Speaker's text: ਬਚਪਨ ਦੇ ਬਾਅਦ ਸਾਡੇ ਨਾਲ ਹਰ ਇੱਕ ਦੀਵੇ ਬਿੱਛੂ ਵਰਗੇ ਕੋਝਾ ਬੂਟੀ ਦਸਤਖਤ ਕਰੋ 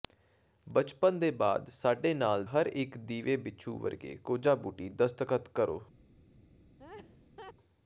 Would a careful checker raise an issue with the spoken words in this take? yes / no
no